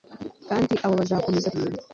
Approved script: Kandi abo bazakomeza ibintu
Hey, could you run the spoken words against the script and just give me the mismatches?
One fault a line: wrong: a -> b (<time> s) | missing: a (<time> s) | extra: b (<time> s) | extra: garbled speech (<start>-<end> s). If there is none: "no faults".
no faults